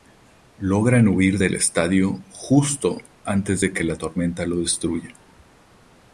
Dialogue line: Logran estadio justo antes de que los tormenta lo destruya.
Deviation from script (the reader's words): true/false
true